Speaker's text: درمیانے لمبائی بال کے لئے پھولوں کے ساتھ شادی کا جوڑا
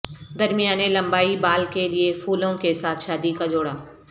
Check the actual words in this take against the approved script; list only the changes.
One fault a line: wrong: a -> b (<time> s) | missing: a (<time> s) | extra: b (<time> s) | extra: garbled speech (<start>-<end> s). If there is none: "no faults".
no faults